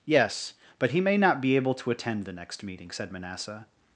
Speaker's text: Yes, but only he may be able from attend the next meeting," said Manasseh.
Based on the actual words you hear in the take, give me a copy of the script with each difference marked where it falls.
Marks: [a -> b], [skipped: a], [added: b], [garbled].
Yes, but [skipped: only] he may [added: not] be able [from -> to] attend the next meeting," said Manasseh.